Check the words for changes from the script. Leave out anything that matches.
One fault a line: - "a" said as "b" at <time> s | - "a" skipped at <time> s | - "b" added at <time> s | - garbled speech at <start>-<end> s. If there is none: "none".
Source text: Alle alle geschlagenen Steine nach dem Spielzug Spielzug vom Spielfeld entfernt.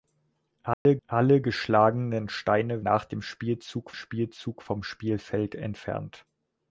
none